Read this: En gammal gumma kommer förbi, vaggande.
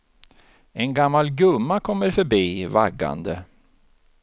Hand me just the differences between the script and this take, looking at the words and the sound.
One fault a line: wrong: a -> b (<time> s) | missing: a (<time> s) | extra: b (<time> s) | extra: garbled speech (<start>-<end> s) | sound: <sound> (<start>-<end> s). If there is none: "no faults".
no faults